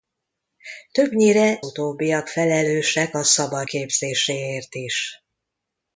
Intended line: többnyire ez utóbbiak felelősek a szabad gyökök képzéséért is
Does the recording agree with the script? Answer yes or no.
no